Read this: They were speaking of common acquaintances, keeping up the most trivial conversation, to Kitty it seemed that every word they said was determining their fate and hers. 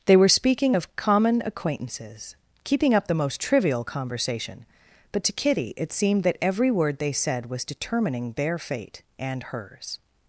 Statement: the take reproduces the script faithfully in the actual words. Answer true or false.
false